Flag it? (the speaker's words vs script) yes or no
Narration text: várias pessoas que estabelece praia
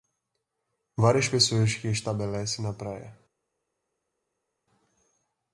yes